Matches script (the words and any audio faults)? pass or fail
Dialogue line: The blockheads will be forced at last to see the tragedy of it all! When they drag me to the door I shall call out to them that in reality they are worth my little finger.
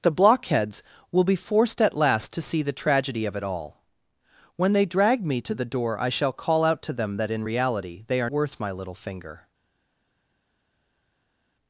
pass